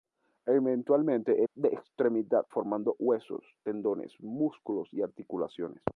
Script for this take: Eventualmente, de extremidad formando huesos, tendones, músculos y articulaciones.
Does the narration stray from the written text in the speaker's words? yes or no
no